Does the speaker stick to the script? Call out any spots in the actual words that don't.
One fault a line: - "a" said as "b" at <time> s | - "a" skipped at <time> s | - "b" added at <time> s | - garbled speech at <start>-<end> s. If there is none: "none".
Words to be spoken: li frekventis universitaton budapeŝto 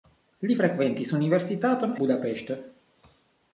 none